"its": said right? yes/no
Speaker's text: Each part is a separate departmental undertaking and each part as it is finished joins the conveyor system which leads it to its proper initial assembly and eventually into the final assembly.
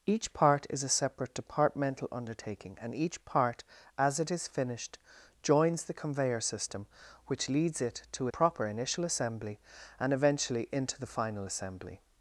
no